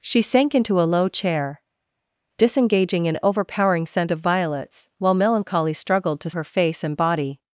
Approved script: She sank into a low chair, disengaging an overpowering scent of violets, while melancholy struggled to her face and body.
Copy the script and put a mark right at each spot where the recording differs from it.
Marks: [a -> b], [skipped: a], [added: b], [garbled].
She sank into a low chair, disengaging an overpowering scent of violets, while melancholy struggled to her face and body.